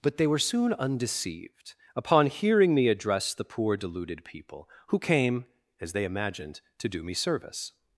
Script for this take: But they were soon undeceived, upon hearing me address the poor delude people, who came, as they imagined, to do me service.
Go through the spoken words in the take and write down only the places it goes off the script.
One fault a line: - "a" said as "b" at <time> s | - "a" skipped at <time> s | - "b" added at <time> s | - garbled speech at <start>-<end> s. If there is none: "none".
- "delude" said as "deluded" at 3.8 s